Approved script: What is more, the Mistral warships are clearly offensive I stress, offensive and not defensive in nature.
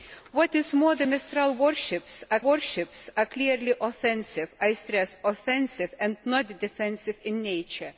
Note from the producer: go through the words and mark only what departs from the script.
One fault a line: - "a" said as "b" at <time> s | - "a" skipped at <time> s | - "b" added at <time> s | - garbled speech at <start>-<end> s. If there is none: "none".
- "warships are" added at 2.4 s